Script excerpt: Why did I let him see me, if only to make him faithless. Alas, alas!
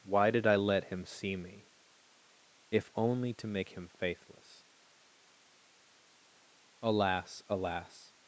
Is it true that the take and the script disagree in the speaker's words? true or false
false